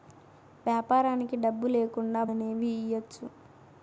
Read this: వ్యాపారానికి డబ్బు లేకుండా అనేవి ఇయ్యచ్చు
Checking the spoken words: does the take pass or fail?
pass